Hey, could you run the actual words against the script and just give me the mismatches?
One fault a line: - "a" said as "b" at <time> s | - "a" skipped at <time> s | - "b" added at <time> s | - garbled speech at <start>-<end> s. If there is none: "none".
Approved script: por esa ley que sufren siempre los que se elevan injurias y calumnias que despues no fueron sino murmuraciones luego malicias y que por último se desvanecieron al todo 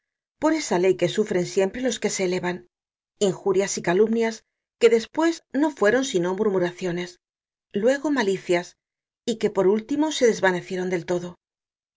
- "al" said as "del" at 10.9 s